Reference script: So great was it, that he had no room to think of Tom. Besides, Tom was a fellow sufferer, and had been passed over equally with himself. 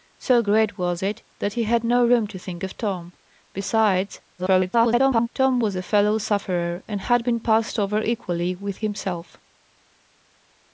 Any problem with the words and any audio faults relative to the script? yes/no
yes